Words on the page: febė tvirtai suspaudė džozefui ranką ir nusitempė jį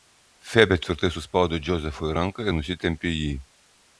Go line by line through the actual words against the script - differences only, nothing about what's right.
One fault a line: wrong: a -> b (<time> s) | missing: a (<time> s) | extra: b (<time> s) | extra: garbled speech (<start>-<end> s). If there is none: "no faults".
no faults